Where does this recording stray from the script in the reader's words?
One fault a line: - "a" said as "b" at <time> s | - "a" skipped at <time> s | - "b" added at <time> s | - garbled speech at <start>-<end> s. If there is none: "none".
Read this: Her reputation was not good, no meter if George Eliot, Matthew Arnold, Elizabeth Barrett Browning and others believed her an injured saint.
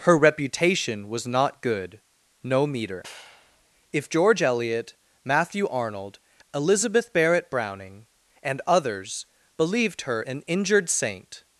none